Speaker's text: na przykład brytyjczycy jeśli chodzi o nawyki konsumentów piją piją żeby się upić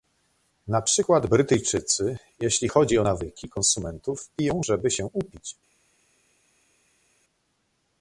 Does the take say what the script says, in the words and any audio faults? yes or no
no